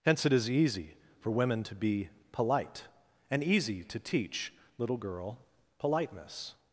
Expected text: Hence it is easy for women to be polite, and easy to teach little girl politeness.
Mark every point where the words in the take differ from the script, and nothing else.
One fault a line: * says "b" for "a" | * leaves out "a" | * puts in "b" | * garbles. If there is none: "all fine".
all fine